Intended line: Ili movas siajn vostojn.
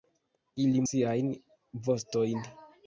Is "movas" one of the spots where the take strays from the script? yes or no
yes